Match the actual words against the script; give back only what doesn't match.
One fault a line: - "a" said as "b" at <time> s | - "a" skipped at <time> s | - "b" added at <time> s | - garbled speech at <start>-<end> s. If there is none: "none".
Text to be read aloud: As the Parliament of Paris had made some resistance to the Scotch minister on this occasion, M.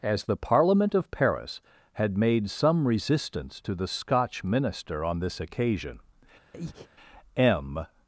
none